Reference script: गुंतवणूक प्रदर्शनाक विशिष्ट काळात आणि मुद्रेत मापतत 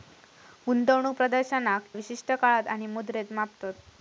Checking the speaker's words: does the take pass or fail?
pass